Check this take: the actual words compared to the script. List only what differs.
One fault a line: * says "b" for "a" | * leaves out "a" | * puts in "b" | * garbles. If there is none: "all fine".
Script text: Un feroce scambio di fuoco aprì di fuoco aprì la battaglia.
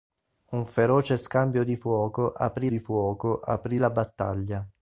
all fine